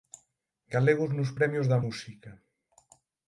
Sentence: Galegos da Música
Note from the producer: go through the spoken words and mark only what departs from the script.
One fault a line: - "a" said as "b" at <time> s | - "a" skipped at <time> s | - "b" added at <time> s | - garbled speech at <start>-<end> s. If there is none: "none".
- "nos Premios" added at 1.2 s